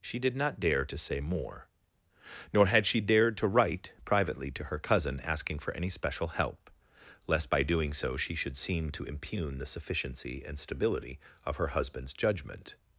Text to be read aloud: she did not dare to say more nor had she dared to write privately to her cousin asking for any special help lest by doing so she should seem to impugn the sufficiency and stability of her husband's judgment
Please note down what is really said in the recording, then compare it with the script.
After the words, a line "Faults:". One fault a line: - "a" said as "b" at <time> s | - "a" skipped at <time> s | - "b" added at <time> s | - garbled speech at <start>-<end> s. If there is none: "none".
she did not dare to say more nor had she dared to write privately to her cousin asking for any special help lest by doing so she should seem to impugn the sufficiency and stability of her husband's judgment
Faults:
none